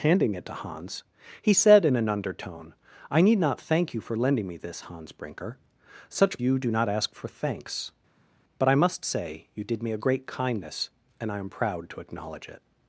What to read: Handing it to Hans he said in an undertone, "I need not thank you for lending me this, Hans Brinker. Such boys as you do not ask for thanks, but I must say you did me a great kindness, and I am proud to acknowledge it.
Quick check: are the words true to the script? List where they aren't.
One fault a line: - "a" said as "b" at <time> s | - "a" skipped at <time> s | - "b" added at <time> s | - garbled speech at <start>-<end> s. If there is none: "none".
- "boys as" skipped at 6.4 s